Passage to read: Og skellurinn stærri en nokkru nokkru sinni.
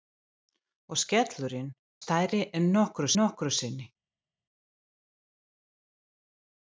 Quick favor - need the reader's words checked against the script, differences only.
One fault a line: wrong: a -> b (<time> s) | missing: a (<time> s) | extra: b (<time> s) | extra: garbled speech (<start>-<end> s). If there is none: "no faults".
no faults